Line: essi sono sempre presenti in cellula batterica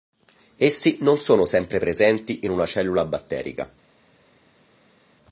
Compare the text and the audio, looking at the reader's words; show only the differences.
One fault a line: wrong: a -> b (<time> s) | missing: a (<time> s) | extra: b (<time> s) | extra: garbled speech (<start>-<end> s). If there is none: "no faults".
extra: non (1.0 s)
extra: una (2.5 s)